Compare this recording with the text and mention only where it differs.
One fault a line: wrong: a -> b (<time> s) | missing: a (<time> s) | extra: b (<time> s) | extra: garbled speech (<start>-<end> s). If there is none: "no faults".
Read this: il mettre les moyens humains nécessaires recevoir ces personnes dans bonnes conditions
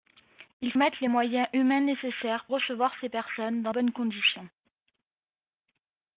no faults